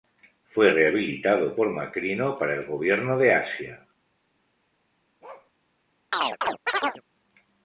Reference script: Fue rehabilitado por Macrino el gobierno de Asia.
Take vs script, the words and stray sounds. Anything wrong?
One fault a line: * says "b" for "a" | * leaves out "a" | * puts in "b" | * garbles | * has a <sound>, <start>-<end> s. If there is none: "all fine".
* puts in "para"
* has a bark, 5.2-5.5 s
* has a chirp, 6.1-7.0 s